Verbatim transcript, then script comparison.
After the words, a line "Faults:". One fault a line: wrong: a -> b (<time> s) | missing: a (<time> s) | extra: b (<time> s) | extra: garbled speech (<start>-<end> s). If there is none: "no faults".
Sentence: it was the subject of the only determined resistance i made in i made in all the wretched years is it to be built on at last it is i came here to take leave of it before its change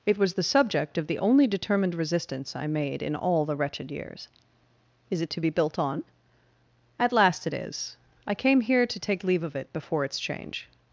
it was the subject of the only determined resistance i made in all the wretched years is it to be built on at last it is i came here to take leave of it before its change
Faults:
missing: i made in (3.1 s)